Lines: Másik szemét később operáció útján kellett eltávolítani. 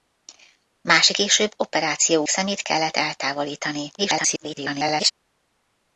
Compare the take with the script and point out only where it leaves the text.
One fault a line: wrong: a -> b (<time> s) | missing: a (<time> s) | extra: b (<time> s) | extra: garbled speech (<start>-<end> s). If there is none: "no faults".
missing: szemét (1.2 s)
wrong: útján -> szemét (2.3 s)
extra: garbled speech (4.0-5.1 s)